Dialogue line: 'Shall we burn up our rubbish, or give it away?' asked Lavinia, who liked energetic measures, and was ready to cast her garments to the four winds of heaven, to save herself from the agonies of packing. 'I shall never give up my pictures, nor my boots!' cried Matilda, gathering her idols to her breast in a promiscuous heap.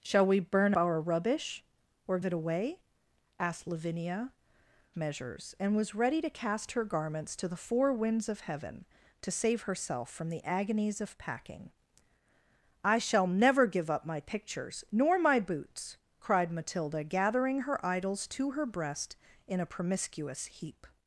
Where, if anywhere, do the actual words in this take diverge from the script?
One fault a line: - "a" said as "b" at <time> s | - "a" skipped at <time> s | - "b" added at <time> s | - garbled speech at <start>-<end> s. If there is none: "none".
- "up" skipped at 0.7 s
- "give" skipped at 2.2 s
- "who liked energetic" skipped at 4.3 s